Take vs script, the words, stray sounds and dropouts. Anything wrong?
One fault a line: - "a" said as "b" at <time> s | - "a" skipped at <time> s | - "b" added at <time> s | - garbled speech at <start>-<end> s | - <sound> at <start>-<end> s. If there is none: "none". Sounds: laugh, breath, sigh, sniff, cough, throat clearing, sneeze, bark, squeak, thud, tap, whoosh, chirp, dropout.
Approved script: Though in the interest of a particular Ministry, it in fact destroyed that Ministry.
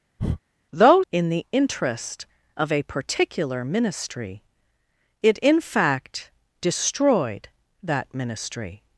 - breath at 0.2-0.4 s